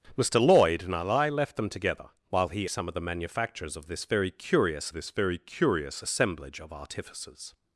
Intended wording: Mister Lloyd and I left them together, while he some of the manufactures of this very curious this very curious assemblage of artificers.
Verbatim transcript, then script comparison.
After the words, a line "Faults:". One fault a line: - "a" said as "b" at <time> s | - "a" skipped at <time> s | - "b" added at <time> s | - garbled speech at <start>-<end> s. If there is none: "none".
Mister Lloyd and I left them together, while he some of the manufactures of this very curious this very curious assemblage of artificers.
Faults:
none